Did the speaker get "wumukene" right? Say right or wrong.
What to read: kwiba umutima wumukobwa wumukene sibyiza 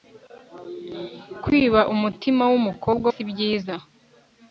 wrong